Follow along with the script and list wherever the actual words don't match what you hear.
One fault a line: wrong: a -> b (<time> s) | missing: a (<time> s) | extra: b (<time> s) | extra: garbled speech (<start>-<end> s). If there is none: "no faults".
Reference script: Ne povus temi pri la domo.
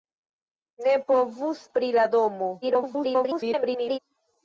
missing: temi (1.6 s)
extra: garbled speech (2.6-4.0 s)